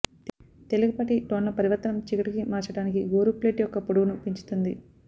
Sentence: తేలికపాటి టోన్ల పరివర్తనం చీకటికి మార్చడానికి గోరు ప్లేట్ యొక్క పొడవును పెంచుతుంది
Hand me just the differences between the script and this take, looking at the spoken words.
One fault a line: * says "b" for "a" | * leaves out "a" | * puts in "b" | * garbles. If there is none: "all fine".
all fine